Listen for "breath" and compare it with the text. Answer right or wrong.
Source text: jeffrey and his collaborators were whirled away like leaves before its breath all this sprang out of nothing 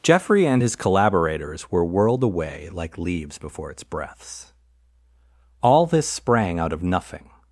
wrong